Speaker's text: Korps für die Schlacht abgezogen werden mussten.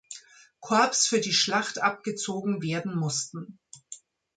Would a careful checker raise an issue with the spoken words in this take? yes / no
no